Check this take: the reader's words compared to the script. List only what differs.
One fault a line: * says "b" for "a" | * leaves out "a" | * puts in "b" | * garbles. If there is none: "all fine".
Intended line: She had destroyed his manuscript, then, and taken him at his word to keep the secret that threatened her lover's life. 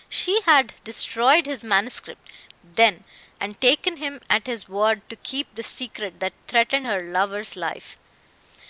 all fine